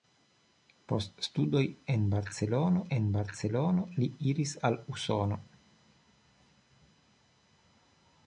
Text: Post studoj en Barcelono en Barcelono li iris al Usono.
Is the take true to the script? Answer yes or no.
yes